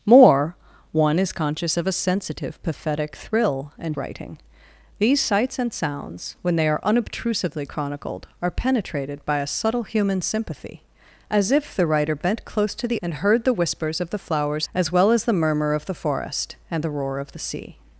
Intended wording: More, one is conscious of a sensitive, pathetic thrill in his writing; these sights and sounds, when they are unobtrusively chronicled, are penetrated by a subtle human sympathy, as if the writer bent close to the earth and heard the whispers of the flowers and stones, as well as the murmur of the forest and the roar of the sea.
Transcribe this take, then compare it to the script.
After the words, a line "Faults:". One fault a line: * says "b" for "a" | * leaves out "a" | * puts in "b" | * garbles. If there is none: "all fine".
More, one is conscious of a sensitive, pathetic thrill in writing; these sights and sounds, when they are unobtrusively chronicled, are penetrated by a subtle human sympathy, as if the writer bent close to the and heard the whispers of the flowers as well as the murmur of the forest and the roar of the sea.
Faults:
* leaves out "his"
* leaves out "earth"
* leaves out "and stones"